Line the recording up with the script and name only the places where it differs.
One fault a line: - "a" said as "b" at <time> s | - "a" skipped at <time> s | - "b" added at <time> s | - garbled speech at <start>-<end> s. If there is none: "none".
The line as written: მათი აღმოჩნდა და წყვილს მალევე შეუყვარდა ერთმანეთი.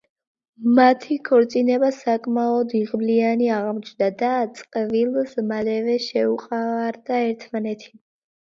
- "ქორწინება საკმაოდ იღბლიანი" added at 1.3 s